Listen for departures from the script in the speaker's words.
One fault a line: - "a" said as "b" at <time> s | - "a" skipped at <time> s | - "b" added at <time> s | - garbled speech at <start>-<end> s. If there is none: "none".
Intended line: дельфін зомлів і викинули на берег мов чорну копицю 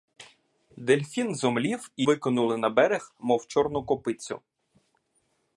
none